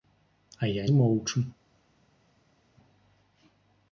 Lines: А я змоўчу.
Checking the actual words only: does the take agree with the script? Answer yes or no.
yes